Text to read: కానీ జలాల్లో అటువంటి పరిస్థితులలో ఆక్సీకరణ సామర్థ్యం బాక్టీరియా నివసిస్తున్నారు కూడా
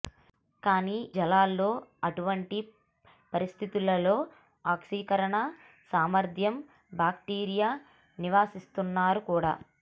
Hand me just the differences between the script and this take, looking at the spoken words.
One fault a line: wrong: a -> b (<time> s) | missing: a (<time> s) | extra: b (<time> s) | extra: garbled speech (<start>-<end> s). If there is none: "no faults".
no faults